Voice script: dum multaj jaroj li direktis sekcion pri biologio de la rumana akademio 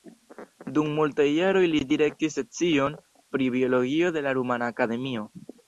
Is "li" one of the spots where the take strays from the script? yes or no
no